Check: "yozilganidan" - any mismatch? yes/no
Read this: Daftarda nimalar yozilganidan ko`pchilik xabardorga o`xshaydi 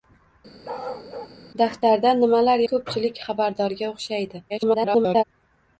yes